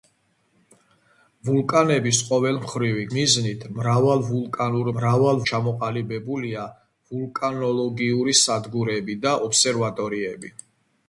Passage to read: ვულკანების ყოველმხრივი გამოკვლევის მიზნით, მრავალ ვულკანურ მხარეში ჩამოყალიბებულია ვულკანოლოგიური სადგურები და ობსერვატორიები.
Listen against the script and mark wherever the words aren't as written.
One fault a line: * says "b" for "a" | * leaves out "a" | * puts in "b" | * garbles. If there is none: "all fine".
* leaves out "გამოკვლევის"
* says "მრავალ" for "მხარეში"